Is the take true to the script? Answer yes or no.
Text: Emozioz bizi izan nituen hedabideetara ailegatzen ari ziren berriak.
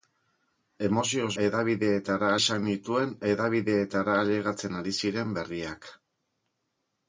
no